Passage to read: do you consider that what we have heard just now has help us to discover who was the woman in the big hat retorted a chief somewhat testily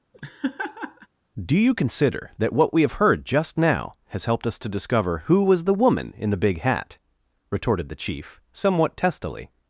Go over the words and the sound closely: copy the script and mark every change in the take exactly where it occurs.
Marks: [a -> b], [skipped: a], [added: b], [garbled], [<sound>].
[laugh] do you consider that what we have heard just now has [help -> helped] us to discover who was the woman in the big hat retorted [a -> the] chief somewhat testily